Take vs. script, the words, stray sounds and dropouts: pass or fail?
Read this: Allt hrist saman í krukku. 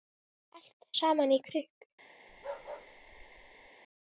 fail